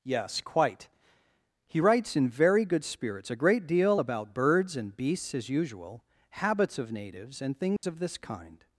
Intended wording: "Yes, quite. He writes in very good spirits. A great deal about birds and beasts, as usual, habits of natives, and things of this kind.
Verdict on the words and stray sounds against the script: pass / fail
fail